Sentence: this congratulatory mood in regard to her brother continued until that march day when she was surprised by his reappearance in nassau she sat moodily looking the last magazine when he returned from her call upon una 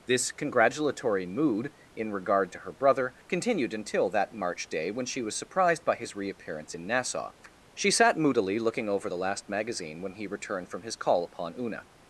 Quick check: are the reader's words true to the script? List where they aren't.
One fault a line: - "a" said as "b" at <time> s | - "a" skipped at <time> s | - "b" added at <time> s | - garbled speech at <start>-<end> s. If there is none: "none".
- "over" added at 8.9 s
- "her" said as "his" at 10.8 s